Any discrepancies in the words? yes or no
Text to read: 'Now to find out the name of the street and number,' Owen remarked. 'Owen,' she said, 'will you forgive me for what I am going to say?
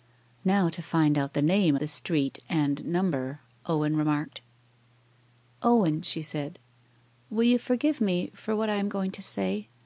yes